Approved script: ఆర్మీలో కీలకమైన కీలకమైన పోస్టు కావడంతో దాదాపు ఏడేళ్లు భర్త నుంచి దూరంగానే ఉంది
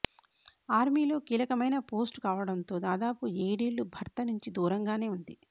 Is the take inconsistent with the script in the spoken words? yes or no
yes